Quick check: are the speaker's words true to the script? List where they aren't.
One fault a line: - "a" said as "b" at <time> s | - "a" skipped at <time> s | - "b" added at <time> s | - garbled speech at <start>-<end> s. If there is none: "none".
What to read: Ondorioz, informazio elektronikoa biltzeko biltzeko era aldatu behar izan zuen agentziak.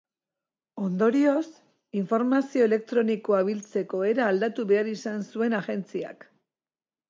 - "biltzeko" skipped at 4.0 s